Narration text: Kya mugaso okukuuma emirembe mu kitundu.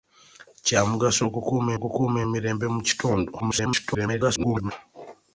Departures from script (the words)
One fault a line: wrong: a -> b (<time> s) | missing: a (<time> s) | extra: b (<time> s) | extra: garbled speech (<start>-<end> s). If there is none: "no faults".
extra: okukuuma (1.8 s)
extra: garbled speech (3.4-4.7 s)